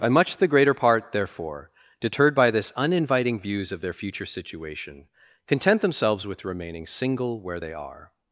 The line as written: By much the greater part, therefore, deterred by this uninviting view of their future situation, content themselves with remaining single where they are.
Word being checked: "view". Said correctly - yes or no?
no